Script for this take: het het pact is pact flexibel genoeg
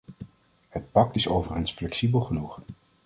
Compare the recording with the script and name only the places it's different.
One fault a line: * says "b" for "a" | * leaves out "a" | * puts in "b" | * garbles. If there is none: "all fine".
* leaves out "het"
* says "overigens" for "pact"